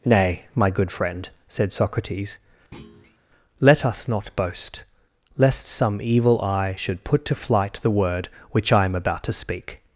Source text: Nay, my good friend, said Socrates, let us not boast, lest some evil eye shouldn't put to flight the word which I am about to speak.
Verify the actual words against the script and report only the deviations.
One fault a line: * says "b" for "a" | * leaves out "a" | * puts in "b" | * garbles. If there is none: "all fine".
* says "should" for "shouldn't"